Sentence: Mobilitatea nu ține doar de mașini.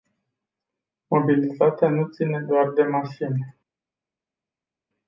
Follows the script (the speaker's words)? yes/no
yes